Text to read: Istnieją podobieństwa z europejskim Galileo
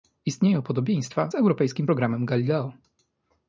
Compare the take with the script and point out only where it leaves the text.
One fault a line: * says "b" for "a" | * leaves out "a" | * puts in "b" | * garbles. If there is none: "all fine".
* puts in "programem"